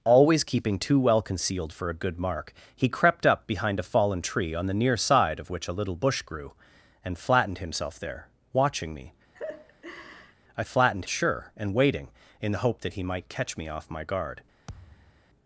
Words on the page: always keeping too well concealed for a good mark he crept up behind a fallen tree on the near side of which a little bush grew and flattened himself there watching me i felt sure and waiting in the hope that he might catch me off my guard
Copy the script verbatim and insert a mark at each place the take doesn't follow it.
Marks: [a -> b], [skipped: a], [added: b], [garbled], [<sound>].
always keeping too well concealed for a good mark he crept up behind a fallen tree on the near side of which a little bush grew and flattened himself there watching me [laugh] i [felt -> flattened] sure and waiting in the hope that he might catch me off my guard [thud]